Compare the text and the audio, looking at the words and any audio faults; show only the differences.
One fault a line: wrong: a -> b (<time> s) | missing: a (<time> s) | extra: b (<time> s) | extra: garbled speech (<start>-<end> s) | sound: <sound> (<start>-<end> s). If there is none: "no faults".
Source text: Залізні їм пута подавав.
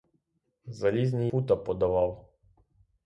missing: їм (1.3 s)